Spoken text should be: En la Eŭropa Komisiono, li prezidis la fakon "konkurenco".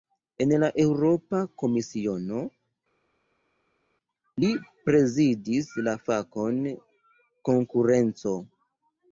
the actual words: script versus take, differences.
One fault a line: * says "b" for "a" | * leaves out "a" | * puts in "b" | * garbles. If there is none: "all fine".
all fine